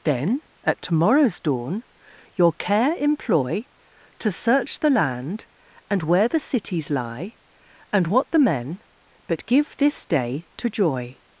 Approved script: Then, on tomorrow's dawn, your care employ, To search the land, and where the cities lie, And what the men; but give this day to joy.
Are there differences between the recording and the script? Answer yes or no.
yes